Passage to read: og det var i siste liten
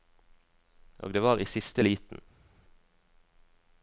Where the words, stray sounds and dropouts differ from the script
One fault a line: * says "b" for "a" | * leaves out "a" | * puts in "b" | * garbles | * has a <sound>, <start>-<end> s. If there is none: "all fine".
all fine